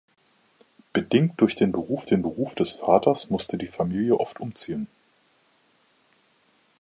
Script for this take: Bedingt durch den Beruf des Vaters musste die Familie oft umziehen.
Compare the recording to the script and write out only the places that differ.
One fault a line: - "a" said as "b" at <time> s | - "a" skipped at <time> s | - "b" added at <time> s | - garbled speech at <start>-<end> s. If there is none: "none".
- "den Beruf" added at 2.1 s